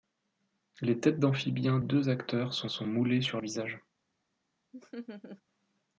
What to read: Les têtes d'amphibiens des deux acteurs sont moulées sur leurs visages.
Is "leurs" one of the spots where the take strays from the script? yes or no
yes